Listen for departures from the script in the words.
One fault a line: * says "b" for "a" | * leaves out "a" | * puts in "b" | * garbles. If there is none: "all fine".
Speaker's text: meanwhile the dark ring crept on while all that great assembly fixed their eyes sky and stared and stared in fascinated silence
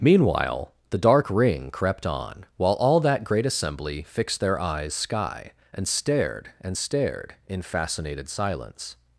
all fine